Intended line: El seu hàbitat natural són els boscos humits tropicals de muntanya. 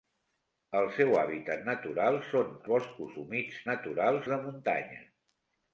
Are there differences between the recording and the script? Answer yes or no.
yes